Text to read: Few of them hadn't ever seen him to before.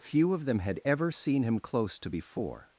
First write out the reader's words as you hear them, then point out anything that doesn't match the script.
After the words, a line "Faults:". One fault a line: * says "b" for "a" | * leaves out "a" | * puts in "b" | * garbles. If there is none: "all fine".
Few of them had ever seen him close to before.
Faults:
* says "had" for "hadn't"
* puts in "close"